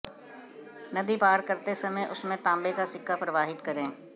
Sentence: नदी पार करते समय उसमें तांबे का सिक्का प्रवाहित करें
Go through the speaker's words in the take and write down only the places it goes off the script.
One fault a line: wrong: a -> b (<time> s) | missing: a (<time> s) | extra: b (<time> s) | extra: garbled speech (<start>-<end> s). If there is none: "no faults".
no faults